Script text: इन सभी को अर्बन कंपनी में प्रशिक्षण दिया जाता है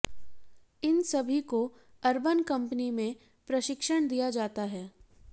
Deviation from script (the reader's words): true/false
false